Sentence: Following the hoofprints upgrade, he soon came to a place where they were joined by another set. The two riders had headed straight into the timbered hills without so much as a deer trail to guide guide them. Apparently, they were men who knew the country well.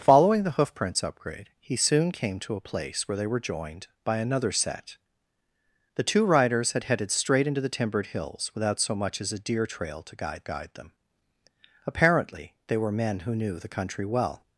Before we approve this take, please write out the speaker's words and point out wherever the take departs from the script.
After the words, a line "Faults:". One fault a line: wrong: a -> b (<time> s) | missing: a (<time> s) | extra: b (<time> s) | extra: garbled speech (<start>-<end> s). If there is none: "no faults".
Following the hoofprints upgrade, he soon came to a place where they were joined by another set. The two riders had headed straight into the timbered hills without so much as a deer trail to guide guide them. Apparently, they were men who knew the country well.
Faults:
no faults